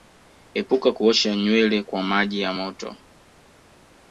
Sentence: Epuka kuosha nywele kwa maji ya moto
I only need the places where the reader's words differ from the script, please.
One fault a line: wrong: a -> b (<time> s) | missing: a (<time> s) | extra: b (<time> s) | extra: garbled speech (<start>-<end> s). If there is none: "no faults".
no faults